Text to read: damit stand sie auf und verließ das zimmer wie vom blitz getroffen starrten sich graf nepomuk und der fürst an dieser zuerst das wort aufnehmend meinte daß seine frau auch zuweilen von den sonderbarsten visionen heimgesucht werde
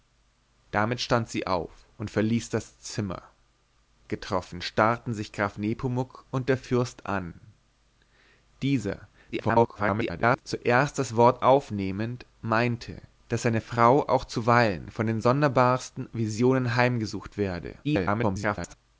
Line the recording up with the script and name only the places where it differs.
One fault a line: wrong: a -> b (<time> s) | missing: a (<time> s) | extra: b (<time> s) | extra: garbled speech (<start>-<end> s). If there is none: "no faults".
missing: wie vom blitz (3.2 s)
extra: garbled speech (9.3-10.4 s)
extra: garbled speech (17.8-18.7 s)